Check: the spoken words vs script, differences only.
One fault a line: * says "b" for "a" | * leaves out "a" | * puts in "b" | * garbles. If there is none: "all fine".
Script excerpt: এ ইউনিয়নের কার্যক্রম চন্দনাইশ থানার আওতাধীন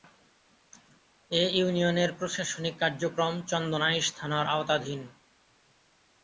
* puts in "প্রশাসনিক"